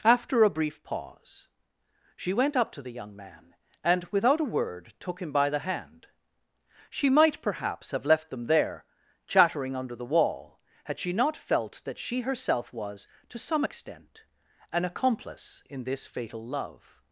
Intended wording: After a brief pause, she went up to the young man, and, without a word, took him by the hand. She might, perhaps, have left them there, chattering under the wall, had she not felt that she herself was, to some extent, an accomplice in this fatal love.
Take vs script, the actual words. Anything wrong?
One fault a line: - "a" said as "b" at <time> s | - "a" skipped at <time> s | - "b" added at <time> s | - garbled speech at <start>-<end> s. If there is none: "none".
none